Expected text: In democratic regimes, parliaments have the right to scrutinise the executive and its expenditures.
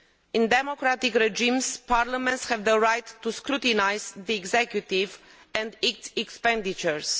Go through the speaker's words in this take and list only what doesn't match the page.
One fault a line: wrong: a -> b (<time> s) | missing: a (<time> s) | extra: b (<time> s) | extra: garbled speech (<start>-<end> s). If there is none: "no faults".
no faults